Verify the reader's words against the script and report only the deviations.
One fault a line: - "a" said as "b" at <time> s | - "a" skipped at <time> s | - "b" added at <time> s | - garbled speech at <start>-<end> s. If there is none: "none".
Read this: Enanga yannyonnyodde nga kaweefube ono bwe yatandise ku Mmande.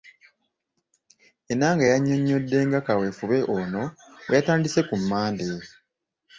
none